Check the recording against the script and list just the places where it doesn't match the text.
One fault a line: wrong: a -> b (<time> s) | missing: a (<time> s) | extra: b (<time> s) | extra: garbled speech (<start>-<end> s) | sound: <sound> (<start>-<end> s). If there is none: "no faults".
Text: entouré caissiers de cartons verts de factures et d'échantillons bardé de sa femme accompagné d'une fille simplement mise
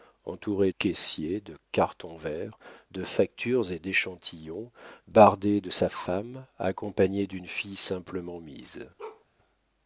sound: bark (9.0-9.3 s)